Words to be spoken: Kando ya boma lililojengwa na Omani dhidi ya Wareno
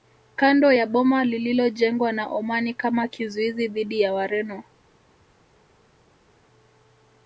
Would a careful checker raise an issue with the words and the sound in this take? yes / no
yes